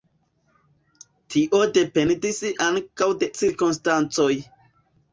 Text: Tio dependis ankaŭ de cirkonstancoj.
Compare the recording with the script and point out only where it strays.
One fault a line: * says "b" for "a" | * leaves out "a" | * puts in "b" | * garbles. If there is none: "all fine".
all fine